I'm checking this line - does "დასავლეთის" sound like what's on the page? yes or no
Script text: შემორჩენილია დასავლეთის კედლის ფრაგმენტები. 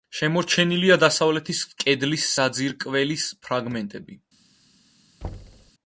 yes